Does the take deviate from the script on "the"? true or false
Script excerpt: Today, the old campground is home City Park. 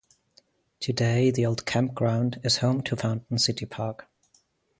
false